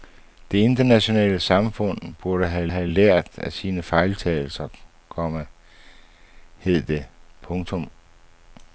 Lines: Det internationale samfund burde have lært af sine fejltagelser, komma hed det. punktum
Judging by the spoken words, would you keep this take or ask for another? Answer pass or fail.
fail